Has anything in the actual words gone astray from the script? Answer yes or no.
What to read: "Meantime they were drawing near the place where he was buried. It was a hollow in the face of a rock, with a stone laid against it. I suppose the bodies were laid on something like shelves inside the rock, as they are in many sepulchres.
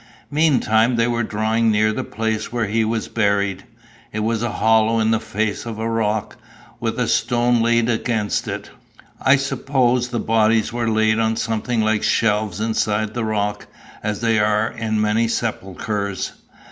no